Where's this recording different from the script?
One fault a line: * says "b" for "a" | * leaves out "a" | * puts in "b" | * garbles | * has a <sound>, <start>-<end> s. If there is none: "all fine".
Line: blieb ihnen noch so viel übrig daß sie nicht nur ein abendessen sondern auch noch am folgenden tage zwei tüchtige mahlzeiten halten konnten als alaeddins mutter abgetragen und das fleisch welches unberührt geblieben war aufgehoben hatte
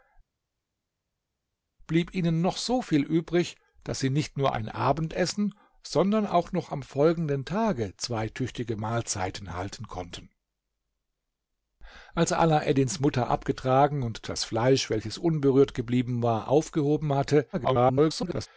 * garbles